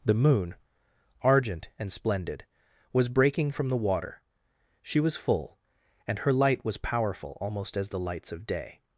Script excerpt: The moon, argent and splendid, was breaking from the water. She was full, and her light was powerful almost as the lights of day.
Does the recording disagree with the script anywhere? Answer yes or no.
no